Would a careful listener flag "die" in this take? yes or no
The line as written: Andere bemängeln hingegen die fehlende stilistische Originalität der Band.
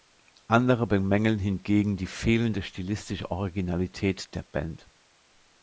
no